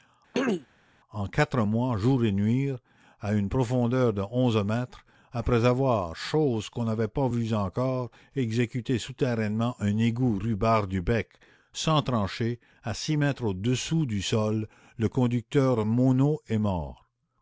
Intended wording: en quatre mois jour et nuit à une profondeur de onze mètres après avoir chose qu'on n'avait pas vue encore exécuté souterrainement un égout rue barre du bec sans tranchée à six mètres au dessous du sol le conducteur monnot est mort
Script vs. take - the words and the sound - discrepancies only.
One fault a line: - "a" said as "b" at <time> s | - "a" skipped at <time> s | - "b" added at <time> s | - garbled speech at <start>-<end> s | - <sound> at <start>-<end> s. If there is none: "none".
- throat clearing at 0.3-0.7 s